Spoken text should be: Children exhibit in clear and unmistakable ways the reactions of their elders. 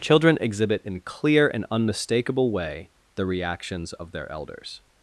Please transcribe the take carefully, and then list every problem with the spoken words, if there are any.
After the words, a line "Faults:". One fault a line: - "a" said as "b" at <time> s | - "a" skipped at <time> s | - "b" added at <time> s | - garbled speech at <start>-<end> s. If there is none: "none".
Children exhibit in clear and unmistakable way the reactions of their elders.
Faults:
- "ways" said as "way" at 2.5 s